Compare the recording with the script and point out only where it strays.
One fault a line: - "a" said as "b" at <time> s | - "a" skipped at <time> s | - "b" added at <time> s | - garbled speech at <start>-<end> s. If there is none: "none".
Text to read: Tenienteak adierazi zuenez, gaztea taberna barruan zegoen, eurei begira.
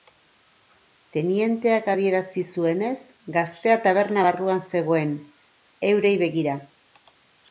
none